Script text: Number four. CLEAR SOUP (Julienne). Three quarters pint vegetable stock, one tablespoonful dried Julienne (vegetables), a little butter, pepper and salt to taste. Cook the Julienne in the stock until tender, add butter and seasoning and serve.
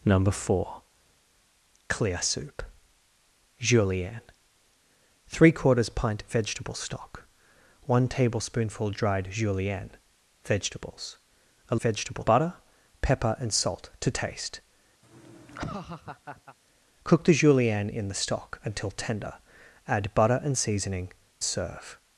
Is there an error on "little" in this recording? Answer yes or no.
yes